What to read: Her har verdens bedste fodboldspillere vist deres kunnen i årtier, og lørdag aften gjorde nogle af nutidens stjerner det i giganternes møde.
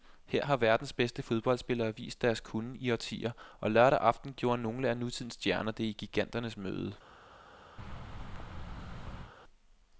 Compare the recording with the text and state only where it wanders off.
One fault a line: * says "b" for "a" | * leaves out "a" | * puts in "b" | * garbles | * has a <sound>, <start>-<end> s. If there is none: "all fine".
* has a thud, 7.8-9.3 s